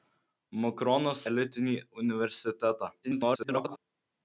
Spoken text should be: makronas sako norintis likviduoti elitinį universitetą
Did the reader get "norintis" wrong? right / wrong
wrong